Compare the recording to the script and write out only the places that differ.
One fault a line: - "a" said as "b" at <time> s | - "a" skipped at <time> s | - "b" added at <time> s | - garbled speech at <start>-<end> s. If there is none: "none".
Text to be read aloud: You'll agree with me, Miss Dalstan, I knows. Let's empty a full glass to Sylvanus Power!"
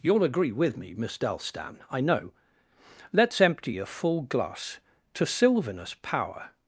- "knows" said as "know" at 2.0 s